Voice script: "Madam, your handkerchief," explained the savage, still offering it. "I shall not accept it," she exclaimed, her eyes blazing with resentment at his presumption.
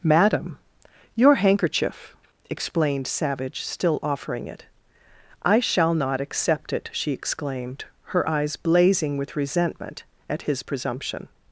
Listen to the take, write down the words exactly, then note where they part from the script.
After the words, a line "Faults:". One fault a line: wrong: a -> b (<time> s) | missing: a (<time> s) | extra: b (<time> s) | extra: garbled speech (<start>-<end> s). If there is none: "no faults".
"Madam, your handkerchief," explained savage, still offering it. "I shall not accept it," she exclaimed, her eyes blazing with resentment at his presumption.
Faults:
missing: the (3.0 s)